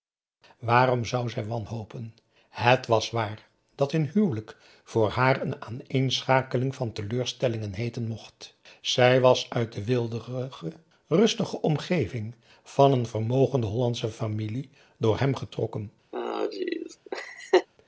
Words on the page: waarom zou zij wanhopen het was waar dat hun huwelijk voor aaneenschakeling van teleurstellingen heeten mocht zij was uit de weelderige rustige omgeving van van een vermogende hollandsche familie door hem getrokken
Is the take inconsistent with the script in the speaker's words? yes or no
yes